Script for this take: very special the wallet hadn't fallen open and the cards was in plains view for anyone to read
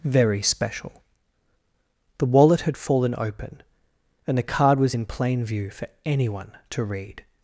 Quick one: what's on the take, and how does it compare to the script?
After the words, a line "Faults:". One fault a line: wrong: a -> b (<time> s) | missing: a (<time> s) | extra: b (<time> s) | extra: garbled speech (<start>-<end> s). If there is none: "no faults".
very special the wallet had fallen open and the card was in plain view for anyone to read
Faults:
wrong: hadn't -> had (2.6 s)
wrong: cards -> card (4.4 s)
wrong: plains -> plain (5.1 s)